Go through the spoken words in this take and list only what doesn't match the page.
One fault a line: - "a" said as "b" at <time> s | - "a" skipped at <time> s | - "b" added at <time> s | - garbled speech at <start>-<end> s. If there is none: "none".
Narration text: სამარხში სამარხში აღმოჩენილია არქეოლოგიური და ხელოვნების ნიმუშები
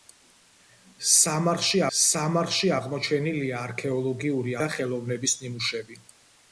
none